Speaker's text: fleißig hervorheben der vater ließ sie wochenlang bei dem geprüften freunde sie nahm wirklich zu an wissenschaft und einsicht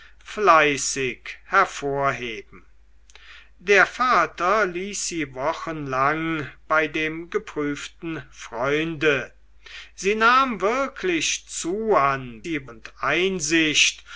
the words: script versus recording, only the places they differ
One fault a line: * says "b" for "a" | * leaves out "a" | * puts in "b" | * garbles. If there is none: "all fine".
* says "sie" for "wissenschaft"